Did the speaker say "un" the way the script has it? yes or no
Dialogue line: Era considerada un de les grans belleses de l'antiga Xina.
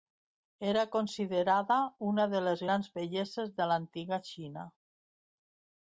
no